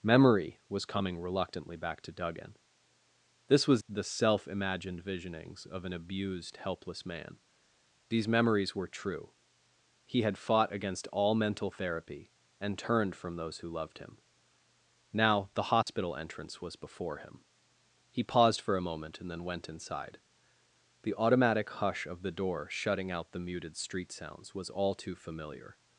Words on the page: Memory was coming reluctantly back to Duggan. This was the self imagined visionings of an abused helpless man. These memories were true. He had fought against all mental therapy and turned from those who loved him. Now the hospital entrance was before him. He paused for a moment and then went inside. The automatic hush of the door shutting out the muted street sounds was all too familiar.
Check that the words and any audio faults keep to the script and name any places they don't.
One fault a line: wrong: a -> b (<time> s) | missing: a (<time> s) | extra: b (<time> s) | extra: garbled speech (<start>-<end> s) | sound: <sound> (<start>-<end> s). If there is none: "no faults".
sound: dropout (15.8-15.9 s)